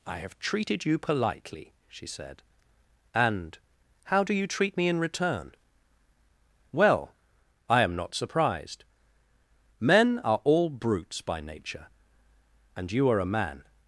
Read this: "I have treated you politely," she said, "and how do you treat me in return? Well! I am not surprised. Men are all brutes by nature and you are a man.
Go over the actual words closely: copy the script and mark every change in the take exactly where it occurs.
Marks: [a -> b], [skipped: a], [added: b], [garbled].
"I have treated you politely," she said, "and how do you treat me in return? Well! I am not surprised. Men are all brutes by nature and you are a man.